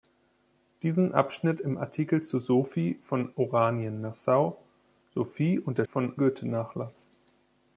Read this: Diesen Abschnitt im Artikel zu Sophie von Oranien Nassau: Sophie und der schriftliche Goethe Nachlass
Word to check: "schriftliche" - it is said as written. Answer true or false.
false